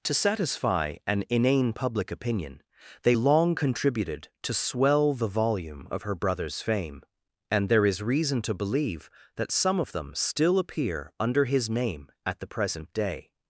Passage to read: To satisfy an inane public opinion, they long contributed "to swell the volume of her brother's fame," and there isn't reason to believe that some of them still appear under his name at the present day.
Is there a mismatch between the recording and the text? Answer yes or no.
yes